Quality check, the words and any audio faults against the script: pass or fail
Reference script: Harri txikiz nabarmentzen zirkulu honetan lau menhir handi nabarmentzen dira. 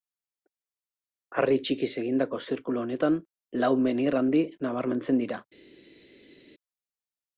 fail